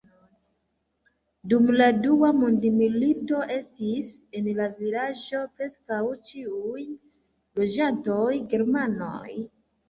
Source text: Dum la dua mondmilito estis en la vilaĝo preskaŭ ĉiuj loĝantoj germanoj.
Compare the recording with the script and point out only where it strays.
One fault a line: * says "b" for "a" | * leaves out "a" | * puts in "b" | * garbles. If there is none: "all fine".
all fine